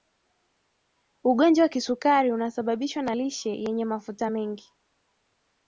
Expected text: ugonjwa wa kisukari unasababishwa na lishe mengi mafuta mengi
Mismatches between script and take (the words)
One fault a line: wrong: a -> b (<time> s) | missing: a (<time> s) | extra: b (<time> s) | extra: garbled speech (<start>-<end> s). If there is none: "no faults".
wrong: mengi -> yenye (3.5 s)